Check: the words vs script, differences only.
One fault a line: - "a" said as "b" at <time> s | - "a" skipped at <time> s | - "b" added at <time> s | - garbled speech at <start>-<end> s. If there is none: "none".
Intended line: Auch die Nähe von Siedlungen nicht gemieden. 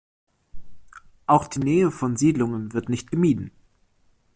- "wird" added at 2.7 s